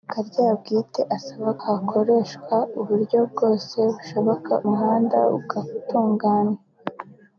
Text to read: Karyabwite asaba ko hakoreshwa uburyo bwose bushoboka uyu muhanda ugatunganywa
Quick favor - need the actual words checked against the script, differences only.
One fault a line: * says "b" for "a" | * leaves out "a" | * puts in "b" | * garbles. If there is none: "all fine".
* leaves out "ko"
* leaves out "uyu"